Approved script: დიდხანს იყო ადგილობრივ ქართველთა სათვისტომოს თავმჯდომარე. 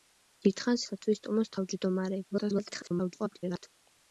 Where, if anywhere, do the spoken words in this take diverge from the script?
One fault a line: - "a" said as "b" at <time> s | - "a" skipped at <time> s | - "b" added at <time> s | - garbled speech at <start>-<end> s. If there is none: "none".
- "იყო ადგილობრივ ქართველთა" skipped at 0.8 s
- garbled speech at 2.3-3.7 s